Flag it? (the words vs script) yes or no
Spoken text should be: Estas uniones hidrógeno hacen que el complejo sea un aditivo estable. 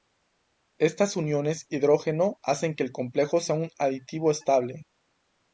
no